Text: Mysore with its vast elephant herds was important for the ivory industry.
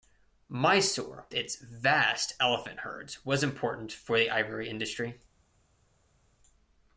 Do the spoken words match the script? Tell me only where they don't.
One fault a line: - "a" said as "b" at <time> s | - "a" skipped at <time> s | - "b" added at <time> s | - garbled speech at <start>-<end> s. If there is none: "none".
- "with" skipped at 1.3 s